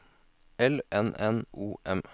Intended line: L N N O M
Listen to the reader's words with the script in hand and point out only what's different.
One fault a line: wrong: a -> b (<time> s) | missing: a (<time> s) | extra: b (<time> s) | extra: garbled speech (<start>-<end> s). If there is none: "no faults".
no faults